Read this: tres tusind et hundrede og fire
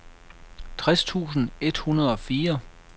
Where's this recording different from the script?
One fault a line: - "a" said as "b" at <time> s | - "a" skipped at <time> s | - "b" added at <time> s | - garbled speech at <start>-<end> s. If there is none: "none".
none